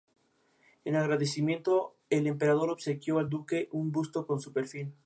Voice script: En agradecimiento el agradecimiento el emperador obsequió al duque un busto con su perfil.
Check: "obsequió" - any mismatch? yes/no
no